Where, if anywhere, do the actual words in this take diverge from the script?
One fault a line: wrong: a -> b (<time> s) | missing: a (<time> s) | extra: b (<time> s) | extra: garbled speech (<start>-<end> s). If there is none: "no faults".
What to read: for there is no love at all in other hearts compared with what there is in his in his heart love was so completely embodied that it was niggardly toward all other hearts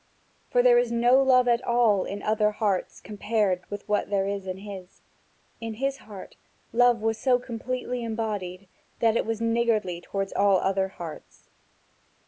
no faults